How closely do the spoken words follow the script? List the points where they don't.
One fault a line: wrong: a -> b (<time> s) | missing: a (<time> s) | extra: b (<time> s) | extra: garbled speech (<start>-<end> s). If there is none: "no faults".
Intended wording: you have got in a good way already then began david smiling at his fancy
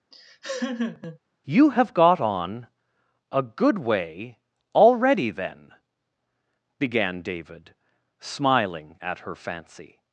wrong: in -> on (2.2 s)
wrong: his -> her (9.2 s)